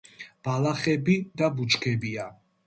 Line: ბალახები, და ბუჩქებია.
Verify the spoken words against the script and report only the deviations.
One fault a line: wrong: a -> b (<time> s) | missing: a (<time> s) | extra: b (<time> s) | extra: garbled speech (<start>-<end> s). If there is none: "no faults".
no faults